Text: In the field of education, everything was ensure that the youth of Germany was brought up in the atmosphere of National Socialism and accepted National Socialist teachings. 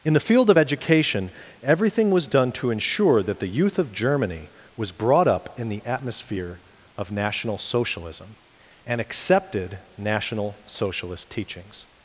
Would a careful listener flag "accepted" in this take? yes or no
no